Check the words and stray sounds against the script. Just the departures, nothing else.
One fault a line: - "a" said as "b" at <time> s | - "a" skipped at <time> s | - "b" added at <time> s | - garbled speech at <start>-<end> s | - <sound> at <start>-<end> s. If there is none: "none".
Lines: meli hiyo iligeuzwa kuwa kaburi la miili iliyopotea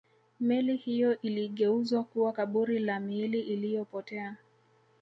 none